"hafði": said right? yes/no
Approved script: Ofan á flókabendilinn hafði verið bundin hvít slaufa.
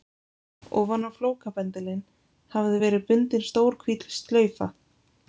yes